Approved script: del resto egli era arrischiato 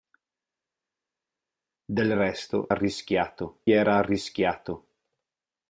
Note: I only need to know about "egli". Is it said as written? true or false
false